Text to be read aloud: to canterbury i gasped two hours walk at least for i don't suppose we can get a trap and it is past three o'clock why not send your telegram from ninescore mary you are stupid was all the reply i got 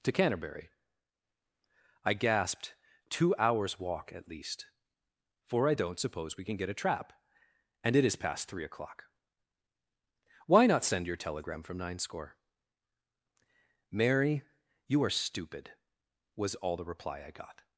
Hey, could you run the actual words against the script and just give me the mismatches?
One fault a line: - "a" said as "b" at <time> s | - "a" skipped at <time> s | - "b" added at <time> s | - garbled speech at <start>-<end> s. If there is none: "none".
none